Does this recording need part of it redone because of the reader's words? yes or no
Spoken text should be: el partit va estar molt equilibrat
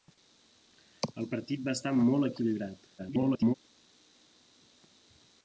yes